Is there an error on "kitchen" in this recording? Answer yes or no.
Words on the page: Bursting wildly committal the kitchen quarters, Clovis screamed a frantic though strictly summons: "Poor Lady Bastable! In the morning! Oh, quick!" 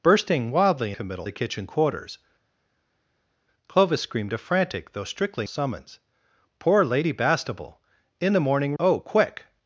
no